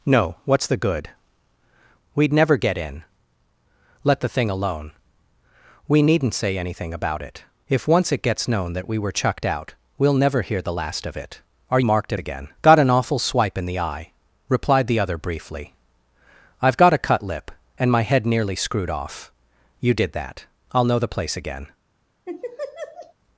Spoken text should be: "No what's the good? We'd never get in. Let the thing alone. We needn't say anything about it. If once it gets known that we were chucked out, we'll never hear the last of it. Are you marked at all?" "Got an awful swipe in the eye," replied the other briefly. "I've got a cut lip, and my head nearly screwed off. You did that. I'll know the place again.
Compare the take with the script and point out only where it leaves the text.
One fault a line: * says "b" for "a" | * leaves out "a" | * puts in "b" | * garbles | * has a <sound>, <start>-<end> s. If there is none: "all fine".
* leaves out "you"
* says "again" for "all"
* has a laugh, 22.2-23.1 s